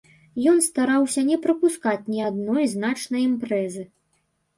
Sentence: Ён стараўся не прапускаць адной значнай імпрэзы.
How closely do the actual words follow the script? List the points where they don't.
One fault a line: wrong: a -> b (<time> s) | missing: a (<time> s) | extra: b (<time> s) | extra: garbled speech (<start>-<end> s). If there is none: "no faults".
extra: ні (2.1 s)